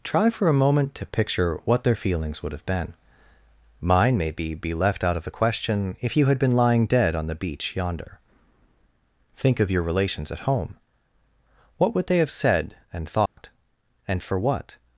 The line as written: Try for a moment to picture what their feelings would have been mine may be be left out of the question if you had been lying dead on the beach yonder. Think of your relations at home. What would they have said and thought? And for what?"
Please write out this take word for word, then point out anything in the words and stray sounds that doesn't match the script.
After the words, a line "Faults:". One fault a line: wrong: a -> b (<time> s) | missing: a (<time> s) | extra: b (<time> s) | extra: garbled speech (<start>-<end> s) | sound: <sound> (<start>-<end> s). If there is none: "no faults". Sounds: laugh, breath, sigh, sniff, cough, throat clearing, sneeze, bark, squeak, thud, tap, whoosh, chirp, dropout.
Try for a moment to picture what their feelings would have been mine may be be left out of the question if you had been lying dead on the beach yonder. Think of your relations at home. What would they have said and thought? And for what?"
Faults:
sound: dropout (13.3-13.4 s)